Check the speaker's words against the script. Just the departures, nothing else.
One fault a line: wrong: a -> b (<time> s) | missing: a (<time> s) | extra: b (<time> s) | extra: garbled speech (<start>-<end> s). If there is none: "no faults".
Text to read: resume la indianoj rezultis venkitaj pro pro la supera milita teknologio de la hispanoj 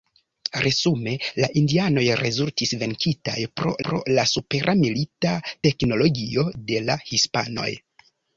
no faults